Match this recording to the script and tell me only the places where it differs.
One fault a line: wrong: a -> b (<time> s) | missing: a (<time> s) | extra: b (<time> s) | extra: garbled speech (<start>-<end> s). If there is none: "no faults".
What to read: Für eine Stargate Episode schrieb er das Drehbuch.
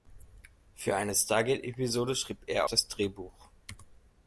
no faults